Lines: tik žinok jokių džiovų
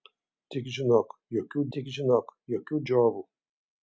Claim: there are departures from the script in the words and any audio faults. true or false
true